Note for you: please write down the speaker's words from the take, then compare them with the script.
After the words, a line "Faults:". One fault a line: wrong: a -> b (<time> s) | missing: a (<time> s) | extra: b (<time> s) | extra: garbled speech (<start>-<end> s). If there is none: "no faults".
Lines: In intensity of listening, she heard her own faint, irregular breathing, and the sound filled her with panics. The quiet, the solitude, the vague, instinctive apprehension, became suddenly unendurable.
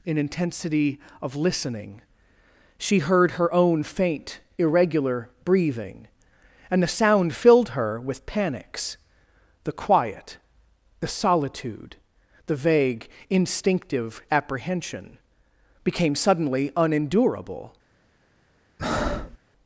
In intensity of listening, she heard her own faint, irregular breathing, and the sound filled her with panics. The quiet, the solitude, the vague, instinctive apprehension, became suddenly unendurable.
Faults:
no faults